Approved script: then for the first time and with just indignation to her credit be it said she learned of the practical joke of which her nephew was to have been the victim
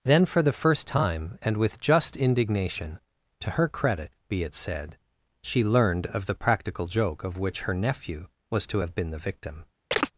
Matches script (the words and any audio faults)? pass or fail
fail